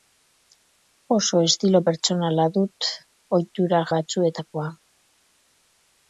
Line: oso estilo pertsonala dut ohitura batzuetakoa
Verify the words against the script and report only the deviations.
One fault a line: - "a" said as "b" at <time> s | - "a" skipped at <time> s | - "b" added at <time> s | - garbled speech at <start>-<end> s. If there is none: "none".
none